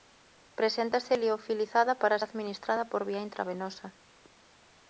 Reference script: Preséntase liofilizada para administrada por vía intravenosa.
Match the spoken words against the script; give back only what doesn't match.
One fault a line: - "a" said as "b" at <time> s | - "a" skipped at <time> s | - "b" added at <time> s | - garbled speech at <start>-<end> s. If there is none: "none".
none